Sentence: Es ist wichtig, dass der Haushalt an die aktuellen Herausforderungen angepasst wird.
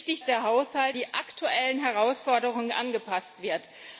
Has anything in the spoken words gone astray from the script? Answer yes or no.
yes